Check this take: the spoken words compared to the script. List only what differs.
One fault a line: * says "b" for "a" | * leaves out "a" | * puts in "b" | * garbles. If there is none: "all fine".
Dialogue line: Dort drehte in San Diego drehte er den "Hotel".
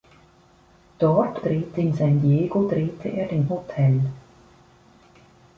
all fine